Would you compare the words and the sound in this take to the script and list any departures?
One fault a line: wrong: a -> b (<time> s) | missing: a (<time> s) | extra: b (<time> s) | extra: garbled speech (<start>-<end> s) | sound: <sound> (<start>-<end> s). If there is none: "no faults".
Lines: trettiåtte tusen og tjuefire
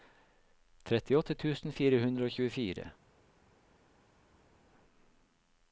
extra: fire hundre (1.8 s)